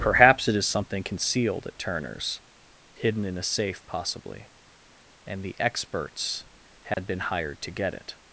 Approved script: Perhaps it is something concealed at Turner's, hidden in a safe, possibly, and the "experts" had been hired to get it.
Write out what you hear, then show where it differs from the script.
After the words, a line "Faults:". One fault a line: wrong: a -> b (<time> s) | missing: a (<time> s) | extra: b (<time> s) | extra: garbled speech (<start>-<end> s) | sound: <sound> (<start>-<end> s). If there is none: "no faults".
Perhaps it is something concealed at Turner's, hidden in a safe, possibly, and the "experts" had been hired to get it.
Faults:
sound: dropout (6.9-7.0 s)